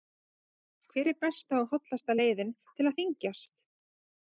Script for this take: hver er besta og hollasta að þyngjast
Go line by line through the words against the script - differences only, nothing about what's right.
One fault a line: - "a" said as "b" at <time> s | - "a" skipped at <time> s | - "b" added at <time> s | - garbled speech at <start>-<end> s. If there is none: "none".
- "leiðin til" added at 2.2 s